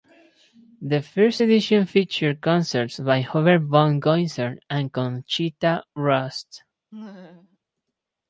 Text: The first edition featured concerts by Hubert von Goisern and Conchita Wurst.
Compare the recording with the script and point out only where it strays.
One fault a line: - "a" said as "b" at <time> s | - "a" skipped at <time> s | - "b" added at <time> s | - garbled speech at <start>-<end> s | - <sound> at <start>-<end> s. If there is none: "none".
- laugh at 6.9-7.6 s